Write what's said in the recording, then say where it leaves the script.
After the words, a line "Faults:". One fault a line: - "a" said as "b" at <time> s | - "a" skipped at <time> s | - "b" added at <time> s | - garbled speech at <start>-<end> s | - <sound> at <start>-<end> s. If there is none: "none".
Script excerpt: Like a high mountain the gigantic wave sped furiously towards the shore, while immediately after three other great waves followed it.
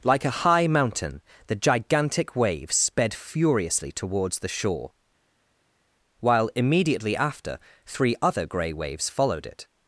Like a high mountain the gigantic wave sped furiously towards the shore, while immediately after three other grey waves followed it.
Faults:
- "great" said as "grey" at 8.4 s